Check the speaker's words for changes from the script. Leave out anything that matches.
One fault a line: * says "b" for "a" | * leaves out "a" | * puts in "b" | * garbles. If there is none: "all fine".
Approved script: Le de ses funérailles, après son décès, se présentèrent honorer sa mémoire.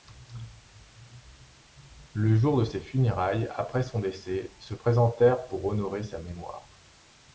* puts in "jour"
* puts in "pour"